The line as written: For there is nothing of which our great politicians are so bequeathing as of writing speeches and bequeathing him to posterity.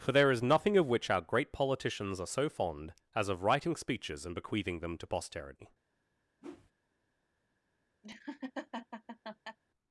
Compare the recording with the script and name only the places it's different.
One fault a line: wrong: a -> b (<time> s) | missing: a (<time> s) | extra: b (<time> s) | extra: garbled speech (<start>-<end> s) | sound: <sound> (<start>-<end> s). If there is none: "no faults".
wrong: bequeathing -> fond (2.5 s)
wrong: him -> them (4.8 s)
sound: whoosh (6.4-6.7 s)
sound: laugh (8.0-9.6 s)